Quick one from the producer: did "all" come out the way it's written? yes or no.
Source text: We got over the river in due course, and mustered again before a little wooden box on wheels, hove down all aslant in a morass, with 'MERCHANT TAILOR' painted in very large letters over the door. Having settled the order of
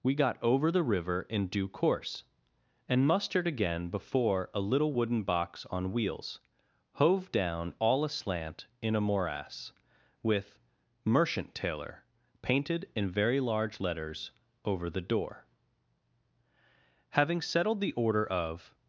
yes